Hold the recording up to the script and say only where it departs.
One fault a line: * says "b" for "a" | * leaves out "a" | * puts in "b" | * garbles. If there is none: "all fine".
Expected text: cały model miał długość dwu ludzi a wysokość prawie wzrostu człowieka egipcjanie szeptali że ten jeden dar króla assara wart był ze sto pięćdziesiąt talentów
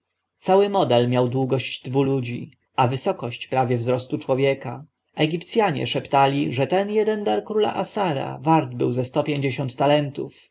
all fine